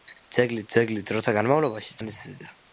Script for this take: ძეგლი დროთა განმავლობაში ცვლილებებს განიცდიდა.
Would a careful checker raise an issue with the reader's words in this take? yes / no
yes